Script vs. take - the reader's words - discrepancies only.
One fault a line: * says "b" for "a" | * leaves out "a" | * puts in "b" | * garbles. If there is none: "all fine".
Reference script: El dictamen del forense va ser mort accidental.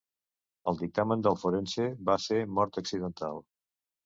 all fine